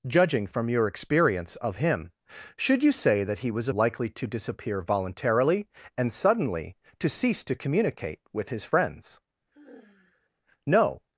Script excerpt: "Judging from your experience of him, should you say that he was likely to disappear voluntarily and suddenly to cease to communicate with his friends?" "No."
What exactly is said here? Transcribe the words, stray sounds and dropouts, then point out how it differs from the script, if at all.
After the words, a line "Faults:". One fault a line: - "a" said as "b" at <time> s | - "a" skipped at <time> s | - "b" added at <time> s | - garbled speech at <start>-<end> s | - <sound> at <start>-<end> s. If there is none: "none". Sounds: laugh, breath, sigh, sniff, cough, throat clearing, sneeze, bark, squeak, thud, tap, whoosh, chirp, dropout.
"Judging from your experience of him, should you say that he was likely to disappear voluntarily and suddenly to cease to communicate with his friends?" "No."
Faults:
- sigh at 9.5-10.3 s